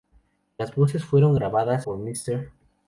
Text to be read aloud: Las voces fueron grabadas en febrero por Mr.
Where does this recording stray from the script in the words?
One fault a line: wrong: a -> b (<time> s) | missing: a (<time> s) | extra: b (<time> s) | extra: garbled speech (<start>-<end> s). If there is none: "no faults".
missing: en febrero (1.9 s)